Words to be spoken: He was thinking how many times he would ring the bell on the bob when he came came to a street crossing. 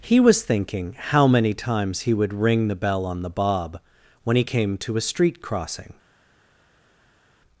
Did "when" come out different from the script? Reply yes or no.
no